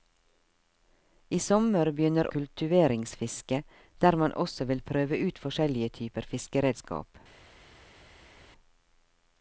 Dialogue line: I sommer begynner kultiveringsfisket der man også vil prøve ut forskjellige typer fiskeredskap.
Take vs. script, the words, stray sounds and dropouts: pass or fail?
pass